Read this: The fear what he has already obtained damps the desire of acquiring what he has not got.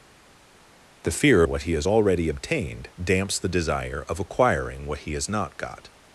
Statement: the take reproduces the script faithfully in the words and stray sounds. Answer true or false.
true